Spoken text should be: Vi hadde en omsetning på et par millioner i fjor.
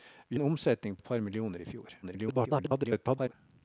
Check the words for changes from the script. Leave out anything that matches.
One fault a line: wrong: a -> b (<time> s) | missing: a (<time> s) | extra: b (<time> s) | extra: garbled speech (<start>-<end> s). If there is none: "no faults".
missing: hadde (0.4 s)
missing: på (1.0 s)
extra: garbled speech (2.0-3.3 s)